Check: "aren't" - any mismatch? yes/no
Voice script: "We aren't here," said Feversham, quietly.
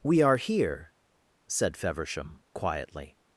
yes